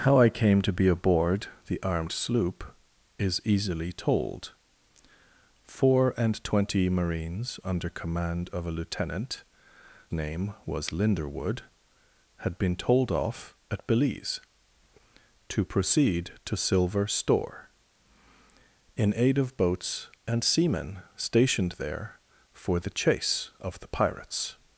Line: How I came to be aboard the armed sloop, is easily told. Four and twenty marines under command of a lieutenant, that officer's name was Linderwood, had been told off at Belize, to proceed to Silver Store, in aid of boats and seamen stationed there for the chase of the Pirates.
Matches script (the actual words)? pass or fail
fail